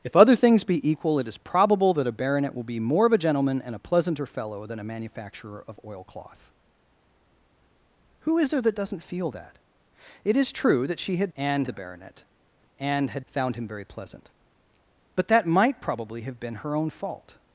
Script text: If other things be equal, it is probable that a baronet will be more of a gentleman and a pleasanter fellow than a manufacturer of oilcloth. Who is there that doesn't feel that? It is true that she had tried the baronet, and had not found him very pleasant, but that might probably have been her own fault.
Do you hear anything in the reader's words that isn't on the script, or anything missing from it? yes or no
yes